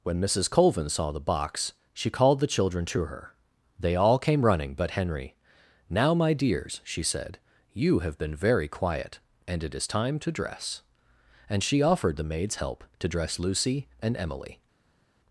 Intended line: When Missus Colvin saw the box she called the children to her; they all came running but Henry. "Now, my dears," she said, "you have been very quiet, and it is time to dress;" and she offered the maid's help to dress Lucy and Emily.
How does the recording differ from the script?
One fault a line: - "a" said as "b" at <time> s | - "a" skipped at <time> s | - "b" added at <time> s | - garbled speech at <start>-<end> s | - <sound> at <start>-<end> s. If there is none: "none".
none